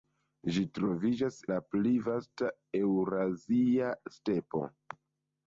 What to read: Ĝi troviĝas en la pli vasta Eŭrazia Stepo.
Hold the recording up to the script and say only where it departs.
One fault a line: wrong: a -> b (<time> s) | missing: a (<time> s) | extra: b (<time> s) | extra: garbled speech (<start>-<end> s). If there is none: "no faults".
missing: en (1.4 s)